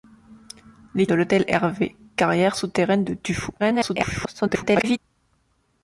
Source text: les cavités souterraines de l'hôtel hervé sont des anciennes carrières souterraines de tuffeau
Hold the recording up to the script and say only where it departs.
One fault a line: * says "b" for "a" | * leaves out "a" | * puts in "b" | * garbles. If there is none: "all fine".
* leaves out "cavités souterraines"
* leaves out "sont des anciennes"
* garbles